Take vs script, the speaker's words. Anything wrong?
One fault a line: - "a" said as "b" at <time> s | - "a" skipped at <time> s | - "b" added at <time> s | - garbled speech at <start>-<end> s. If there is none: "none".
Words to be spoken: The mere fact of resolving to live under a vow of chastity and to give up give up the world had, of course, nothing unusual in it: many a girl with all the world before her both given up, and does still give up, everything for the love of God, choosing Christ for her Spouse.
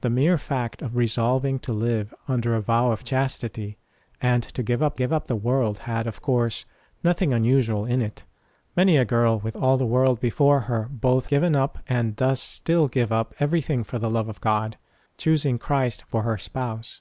none